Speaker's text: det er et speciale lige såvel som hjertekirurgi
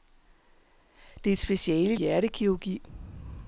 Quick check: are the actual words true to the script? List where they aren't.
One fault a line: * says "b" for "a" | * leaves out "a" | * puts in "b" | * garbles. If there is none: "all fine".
* leaves out "lige såvel som"